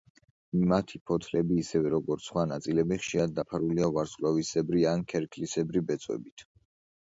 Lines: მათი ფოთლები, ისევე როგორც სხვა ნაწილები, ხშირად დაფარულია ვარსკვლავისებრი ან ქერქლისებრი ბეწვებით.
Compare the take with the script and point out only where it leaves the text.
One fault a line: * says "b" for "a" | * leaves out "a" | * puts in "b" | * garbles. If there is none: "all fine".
all fine